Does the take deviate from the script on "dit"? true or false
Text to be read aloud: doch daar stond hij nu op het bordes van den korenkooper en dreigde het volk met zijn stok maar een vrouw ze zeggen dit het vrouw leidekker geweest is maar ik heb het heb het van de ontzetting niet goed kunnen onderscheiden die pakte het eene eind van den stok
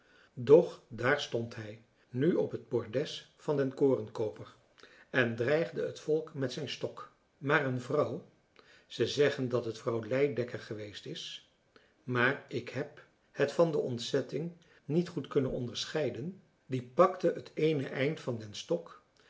true